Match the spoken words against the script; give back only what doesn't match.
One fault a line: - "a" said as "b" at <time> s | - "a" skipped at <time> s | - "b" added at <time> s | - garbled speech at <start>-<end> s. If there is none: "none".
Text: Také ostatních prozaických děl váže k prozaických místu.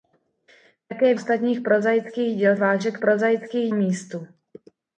none